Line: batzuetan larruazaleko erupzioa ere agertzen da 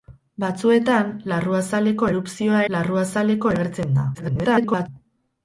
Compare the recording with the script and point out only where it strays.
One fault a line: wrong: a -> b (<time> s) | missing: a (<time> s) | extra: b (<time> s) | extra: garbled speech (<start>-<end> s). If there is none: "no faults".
wrong: ere -> larruazaleko (2.7 s)
extra: garbled speech (4.1-4.9 s)